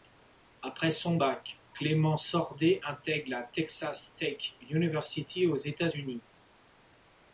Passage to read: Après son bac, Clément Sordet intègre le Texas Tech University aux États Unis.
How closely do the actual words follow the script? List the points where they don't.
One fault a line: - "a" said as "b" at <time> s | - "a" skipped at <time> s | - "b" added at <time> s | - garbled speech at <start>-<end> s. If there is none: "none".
- "le" said as "la" at 3.3 s